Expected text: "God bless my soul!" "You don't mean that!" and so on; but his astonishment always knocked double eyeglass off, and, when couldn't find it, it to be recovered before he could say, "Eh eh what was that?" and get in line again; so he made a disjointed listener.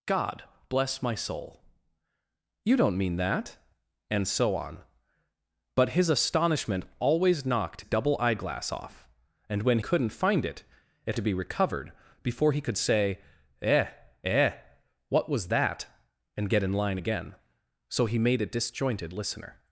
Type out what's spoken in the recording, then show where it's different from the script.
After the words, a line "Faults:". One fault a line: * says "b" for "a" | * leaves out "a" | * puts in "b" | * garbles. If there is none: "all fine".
"God bless my soul!" "You don't mean that!" and so on; but his astonishment always knocked double eyeglass off, and, when couldn't find it, it to be recovered before he could say, "Eh eh what was that?" and get in line again; so he made a disjointed listener.
Faults:
all fine